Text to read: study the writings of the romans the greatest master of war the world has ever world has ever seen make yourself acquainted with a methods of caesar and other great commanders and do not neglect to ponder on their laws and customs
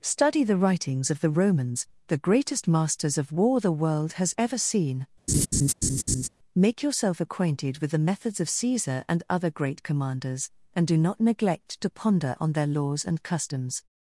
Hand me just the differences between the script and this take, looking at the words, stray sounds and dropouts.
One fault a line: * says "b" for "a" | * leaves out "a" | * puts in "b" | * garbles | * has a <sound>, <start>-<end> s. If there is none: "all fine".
* says "masters" for "master"
* leaves out "world has ever"
* has a laugh, 5.3-6.3 s
* says "the" for "a"